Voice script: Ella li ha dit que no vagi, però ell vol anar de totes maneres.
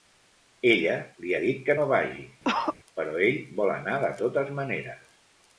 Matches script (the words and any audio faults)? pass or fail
fail